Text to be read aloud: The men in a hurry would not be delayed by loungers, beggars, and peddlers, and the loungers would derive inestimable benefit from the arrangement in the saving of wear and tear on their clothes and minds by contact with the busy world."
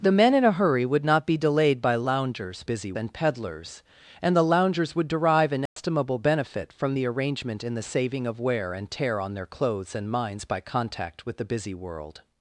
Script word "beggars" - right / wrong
wrong